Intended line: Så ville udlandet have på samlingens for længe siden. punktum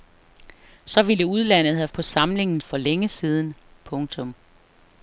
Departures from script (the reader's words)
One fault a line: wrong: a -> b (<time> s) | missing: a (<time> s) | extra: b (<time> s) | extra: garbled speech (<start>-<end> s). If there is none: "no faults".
no faults